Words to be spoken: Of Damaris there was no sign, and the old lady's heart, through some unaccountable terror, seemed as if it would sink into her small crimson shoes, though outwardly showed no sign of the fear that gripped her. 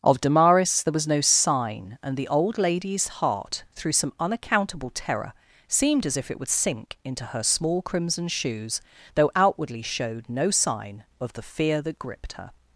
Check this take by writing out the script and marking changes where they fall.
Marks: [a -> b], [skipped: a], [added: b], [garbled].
Of Damaris there was no sign, and the old lady's heart, through some unaccountable terror, seemed as if it would sink into her small crimson shoes, though outwardly showed no sign of the fear that gripped her.